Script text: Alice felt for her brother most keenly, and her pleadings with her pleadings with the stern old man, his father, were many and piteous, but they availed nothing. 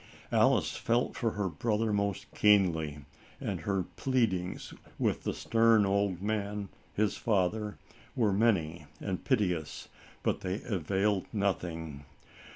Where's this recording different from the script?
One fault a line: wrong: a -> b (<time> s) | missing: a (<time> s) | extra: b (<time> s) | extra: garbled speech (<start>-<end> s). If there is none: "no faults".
missing: her pleadings with (5.2 s)